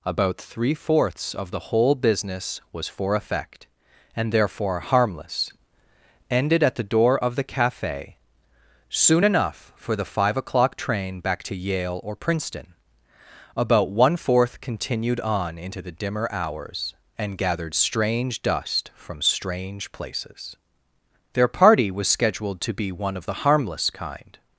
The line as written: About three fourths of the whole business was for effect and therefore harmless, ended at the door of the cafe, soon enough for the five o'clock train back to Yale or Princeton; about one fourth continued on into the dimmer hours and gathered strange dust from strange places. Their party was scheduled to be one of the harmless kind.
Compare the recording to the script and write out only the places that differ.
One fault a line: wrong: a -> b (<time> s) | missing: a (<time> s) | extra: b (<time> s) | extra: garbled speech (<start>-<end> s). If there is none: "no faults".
no faults